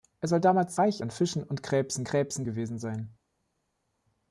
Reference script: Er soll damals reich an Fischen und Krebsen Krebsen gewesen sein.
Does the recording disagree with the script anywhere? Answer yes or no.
no